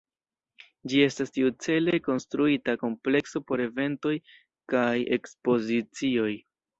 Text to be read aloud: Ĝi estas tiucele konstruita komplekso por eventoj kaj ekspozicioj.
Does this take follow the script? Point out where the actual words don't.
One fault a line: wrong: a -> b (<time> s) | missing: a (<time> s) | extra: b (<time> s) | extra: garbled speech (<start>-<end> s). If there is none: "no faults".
no faults